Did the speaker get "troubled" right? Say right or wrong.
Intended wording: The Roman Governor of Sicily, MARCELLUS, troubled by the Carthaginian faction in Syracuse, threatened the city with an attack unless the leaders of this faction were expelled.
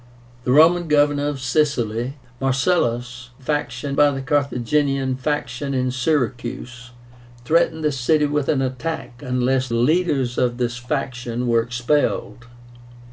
wrong